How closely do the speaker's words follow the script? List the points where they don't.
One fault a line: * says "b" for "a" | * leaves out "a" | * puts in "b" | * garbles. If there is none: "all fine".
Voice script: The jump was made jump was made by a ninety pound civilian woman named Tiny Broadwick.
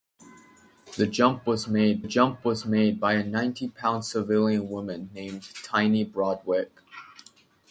all fine